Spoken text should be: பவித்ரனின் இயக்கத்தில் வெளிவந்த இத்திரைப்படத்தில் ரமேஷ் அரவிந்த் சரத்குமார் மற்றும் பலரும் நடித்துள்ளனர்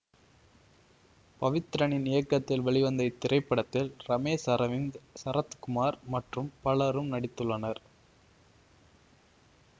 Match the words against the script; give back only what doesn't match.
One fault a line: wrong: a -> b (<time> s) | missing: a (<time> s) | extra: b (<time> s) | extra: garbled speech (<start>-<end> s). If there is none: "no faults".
no faults